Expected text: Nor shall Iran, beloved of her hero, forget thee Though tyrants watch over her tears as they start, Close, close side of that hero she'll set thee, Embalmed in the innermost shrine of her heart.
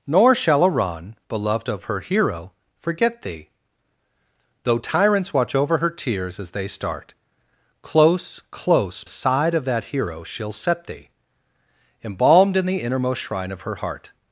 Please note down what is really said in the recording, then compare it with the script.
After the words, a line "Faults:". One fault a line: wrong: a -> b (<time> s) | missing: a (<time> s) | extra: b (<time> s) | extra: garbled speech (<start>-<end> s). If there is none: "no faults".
Nor shall Iran, beloved of her hero, forget thee Though tyrants watch over her tears as they start, Close, close side of that hero she'll set thee, Embalmed in the innermost shrine of her heart.
Faults:
no faults